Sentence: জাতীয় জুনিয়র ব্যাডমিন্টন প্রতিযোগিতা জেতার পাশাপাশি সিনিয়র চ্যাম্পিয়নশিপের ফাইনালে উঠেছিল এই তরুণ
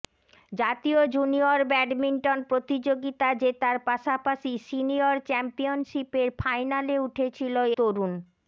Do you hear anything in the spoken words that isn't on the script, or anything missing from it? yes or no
yes